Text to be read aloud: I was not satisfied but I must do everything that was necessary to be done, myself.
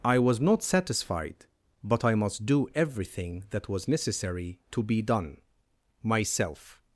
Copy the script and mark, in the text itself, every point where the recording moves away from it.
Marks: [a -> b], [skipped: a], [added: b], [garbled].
I was not satisfied but I must do everything that was necessary to be done, myself.